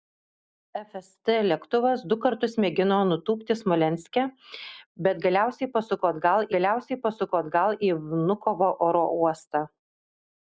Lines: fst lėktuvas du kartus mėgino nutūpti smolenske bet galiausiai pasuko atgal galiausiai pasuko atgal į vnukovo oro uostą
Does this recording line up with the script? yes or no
yes